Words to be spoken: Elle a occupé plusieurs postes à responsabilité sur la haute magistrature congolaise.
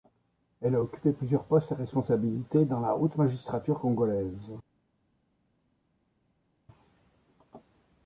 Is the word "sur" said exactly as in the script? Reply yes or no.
no